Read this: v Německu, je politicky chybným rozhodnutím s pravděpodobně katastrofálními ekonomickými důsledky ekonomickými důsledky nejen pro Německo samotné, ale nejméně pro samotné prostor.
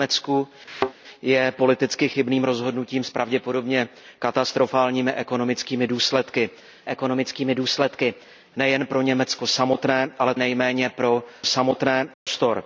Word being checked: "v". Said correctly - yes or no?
yes